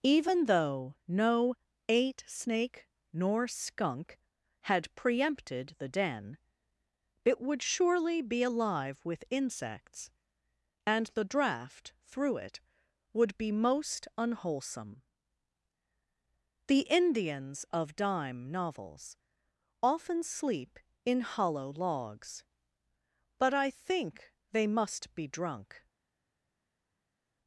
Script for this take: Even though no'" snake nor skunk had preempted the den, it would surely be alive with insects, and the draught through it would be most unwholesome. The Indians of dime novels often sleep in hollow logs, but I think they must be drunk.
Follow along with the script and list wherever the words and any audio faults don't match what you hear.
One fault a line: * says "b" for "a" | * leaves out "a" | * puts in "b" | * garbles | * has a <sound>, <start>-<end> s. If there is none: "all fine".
* puts in "eight"